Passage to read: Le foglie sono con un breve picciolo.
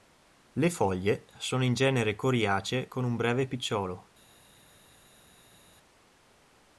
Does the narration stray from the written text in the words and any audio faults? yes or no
yes